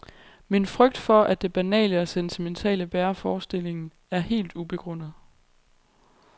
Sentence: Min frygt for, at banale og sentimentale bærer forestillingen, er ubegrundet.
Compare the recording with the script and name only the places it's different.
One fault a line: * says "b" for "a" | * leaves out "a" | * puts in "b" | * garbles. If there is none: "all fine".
* puts in "det"
* puts in "helt"